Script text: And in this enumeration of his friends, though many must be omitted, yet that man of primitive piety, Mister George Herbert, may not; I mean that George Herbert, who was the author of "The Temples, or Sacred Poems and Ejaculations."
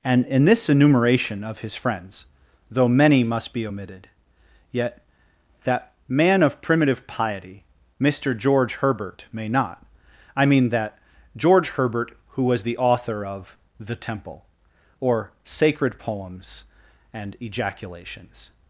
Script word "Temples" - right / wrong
wrong